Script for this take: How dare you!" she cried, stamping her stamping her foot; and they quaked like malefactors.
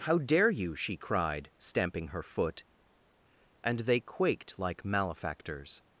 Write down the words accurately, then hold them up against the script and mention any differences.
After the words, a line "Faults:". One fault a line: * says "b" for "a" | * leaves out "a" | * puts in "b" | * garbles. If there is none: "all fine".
How dare you!" she cried, stamping her foot; and they quaked like malefactors.
Faults:
* leaves out "stamping her"